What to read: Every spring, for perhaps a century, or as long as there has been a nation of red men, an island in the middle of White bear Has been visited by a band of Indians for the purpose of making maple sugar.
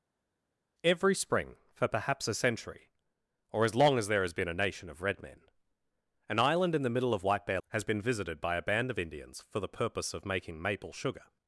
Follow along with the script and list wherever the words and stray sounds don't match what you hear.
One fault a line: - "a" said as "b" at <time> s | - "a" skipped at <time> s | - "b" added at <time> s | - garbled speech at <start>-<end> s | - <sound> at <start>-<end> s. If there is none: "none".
none